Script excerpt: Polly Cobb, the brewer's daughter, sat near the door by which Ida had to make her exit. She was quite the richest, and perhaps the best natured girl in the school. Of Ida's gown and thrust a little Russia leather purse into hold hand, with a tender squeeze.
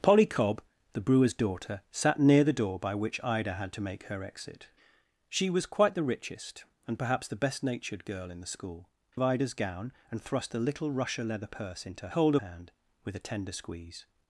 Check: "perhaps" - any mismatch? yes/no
no